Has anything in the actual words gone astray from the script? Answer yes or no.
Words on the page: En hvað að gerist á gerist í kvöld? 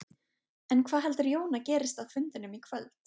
yes